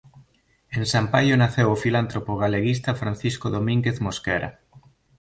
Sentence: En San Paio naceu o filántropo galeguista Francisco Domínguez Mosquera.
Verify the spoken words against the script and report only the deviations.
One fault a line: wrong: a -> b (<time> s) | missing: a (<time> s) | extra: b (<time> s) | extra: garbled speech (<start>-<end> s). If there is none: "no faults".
no faults